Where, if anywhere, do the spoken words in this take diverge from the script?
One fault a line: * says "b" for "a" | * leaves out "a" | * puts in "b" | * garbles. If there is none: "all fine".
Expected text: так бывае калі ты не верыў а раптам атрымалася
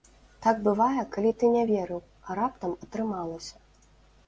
all fine